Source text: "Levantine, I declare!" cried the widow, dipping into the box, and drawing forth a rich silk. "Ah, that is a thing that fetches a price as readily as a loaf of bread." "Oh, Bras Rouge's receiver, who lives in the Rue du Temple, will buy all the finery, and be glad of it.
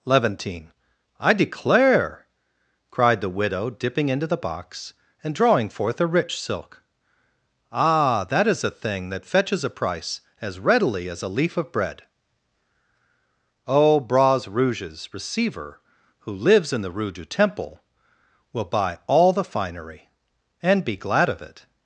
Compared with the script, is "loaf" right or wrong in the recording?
wrong